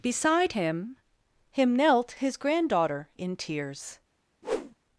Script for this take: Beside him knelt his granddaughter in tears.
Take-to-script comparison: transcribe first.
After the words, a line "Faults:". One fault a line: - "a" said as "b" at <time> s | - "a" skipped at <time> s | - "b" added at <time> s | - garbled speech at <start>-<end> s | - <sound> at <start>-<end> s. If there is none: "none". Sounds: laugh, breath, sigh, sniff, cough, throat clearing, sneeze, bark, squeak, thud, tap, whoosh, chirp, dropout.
Beside him him knelt his granddaughter in tears.
Faults:
- "him" added at 1.5 s
- whoosh at 4.4-4.8 s